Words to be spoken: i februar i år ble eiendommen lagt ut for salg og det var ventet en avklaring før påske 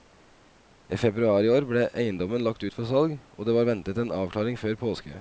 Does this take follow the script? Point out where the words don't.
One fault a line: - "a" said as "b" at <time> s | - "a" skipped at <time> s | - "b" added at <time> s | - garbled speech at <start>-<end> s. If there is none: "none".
none